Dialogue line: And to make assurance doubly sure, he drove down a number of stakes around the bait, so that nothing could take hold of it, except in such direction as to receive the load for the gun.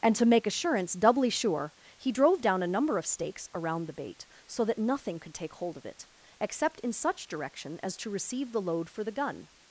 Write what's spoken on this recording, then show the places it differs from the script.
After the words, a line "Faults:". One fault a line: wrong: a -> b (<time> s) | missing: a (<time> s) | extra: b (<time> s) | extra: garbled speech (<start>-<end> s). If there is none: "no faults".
And to make assurance doubly sure, he drove down a number of stakes around the bait, so that nothing could take hold of it, except in such direction as to receive the load for the gun.
Faults:
no faults